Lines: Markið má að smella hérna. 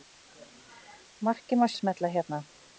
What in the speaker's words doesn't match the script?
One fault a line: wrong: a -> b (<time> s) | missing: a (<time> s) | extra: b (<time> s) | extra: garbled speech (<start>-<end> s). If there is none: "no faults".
no faults